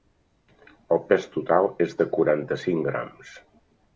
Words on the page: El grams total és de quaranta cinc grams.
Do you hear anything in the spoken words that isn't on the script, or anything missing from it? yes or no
yes